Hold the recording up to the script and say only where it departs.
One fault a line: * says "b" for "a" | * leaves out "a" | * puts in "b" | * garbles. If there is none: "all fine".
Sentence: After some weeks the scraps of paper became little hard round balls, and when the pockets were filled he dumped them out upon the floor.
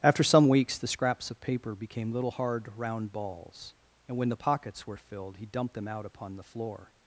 all fine